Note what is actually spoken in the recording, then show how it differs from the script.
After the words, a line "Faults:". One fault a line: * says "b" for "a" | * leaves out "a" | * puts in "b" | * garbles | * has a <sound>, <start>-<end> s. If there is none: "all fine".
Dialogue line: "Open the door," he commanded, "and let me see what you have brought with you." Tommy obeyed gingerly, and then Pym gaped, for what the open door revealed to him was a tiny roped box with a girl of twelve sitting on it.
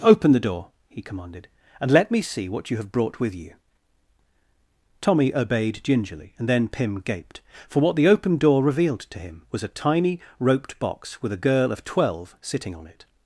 "Open the door," he commanded, "and let me see what you have brought with you." Tommy obeyed gingerly, and then Pym gaped, for what the open door revealed to him was a tiny roped box with a girl of twelve sitting on it.
Faults:
all fine